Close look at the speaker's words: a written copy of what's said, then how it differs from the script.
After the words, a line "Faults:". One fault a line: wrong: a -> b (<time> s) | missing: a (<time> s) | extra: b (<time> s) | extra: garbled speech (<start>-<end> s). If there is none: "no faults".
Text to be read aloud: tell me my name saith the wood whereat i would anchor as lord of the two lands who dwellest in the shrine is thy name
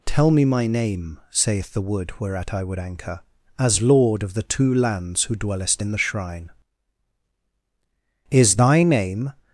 tell me my name saith the wood whereat i would anchor as lord of the two lands who dwellest in the shrine is thy name
Faults:
no faults